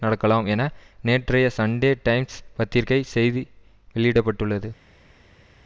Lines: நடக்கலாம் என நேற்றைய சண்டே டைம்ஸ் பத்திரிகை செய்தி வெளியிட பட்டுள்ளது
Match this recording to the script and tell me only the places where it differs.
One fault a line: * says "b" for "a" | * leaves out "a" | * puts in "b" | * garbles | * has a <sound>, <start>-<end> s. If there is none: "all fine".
all fine